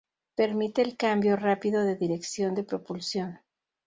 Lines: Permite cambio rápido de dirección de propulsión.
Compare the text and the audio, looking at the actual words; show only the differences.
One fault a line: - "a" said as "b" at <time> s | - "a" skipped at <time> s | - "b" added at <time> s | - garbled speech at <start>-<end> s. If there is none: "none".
- "el" added at 0.8 s